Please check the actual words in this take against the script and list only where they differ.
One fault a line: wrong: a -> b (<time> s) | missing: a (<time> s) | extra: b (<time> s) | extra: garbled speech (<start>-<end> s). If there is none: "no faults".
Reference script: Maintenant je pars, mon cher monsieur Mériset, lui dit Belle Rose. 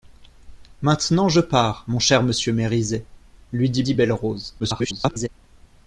extra: dit (3.8 s)
extra: garbled speech (4.6-5.3 s)